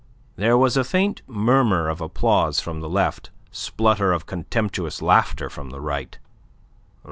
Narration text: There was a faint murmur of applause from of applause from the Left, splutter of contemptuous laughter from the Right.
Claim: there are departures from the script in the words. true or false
true